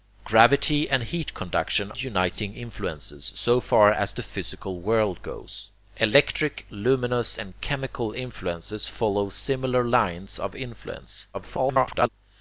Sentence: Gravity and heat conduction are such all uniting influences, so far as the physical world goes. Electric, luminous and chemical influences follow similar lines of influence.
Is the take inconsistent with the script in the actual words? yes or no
yes